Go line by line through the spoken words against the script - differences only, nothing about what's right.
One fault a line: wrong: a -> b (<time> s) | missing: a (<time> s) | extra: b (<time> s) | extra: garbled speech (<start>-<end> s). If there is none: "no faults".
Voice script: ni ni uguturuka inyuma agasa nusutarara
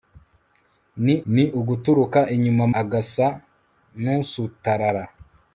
no faults